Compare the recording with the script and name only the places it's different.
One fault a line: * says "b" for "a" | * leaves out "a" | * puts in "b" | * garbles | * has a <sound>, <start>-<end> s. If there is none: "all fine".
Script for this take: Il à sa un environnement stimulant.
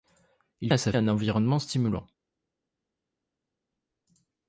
all fine